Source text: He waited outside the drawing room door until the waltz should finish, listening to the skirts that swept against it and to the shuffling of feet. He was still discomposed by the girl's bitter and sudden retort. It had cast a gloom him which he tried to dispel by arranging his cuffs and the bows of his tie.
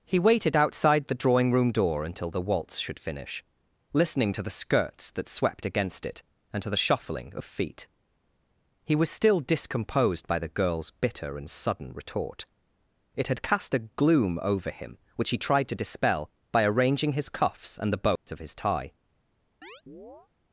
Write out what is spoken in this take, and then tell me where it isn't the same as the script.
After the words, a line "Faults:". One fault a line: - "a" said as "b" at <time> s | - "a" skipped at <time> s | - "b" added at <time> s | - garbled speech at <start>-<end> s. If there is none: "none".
He waited outside the drawing room door until the waltz should finish, listening to the skirts that swept against it and to the shuffling of feet. He was still discomposed by the girl's bitter and sudden retort. It had cast a gloom over him which he tried to dispel by arranging his cuffs and the bows of his tie.
Faults:
- "over" added at 14.4 s